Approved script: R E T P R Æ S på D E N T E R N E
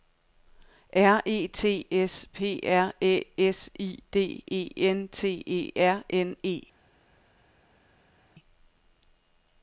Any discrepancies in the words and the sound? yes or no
yes